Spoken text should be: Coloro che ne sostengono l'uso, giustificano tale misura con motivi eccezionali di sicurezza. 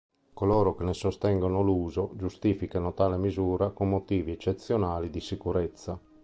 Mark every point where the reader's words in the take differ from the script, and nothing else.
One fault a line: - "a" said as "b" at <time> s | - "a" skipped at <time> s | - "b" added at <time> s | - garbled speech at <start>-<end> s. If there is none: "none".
none